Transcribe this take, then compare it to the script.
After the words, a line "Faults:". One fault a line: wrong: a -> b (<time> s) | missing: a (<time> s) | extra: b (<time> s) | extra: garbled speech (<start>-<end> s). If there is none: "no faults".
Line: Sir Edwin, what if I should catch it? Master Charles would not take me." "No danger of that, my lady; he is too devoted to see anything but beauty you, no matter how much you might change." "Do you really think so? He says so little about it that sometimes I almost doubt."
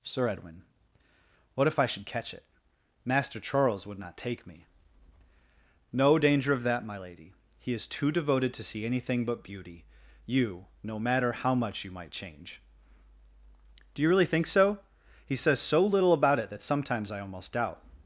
Sir Edwin, what if I should catch it? Master Charles would not take me." "No danger of that, my lady; he is too devoted to see anything but beauty you, no matter how much you might change." "Do you really think so? He says so little about it that sometimes I almost doubt."
Faults:
no faults